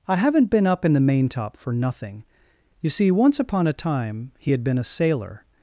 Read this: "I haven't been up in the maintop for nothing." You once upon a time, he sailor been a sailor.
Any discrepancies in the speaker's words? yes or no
yes